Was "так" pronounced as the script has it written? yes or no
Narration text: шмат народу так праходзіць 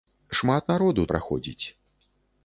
no